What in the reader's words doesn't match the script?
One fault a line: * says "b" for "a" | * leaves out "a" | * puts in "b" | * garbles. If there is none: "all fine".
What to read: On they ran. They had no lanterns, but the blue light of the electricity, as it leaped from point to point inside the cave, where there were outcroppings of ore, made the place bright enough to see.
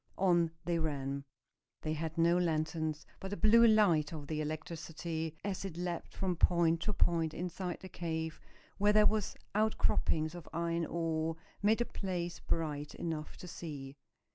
* puts in "iron"